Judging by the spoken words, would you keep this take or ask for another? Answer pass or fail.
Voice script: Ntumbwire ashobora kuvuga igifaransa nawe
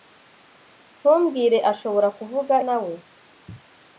fail